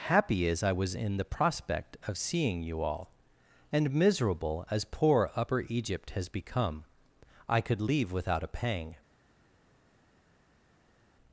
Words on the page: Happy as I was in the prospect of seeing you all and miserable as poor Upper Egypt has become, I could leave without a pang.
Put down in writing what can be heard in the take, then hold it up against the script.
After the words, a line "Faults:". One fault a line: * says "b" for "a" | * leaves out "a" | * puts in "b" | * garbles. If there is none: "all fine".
Happy as I was in the prospect of seeing you all and miserable as poor Upper Egypt has become, I could leave without a pang.
Faults:
all fine